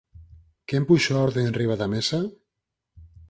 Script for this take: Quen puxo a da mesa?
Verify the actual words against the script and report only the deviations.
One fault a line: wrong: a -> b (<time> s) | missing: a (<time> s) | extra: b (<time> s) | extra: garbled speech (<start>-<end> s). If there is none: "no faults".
extra: orde enriba (1.2 s)